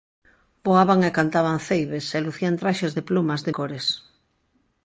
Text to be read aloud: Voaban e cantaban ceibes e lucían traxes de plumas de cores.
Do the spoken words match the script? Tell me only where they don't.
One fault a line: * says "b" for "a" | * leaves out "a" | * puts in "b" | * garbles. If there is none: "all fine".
all fine